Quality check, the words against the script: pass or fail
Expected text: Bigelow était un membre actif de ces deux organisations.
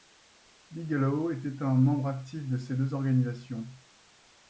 pass